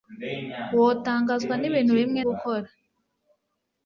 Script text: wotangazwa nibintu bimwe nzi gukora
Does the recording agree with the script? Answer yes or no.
no